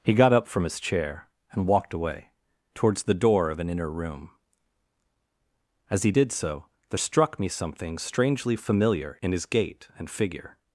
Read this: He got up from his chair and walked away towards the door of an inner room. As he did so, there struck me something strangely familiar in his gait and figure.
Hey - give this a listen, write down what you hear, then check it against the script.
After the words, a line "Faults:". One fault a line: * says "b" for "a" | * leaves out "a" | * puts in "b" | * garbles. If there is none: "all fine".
He got up from his chair and walked away towards the door of an inner room. As he did so, there struck me something strangely familiar in his gait and figure.
Faults:
all fine